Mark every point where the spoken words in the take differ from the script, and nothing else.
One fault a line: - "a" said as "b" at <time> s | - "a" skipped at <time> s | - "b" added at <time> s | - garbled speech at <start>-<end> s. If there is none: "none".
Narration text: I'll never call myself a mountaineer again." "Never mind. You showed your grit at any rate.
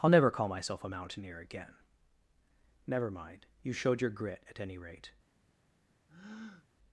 none